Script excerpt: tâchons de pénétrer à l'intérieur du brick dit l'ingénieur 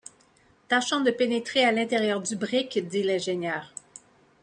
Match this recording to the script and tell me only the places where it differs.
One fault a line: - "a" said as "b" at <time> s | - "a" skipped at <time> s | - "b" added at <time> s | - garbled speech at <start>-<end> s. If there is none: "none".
none